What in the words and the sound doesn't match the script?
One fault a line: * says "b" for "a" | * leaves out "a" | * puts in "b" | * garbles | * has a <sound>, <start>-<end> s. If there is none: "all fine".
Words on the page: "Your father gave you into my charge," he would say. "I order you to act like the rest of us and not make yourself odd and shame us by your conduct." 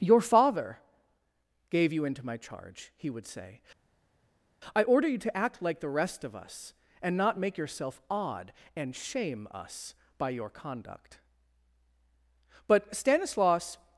* puts in "But Stanislaus"